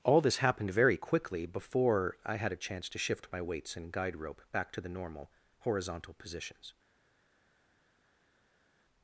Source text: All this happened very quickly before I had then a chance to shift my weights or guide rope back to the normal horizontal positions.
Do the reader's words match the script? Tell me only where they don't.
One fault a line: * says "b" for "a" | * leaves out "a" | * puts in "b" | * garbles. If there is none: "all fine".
* leaves out "then"
* says "and" for "or"